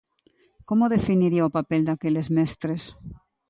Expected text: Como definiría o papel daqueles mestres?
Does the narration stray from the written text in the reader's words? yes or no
no